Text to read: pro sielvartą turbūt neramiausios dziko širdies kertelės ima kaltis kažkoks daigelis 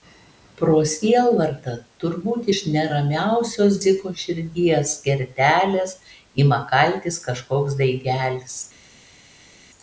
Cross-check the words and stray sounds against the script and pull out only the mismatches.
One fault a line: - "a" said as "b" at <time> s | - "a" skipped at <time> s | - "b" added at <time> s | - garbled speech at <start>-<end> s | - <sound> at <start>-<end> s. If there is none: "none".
- "iš" added at 2.5 s